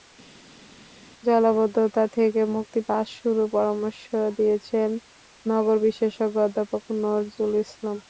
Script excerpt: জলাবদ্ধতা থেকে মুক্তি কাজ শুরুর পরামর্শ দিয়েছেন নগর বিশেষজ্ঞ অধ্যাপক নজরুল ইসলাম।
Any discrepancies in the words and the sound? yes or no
no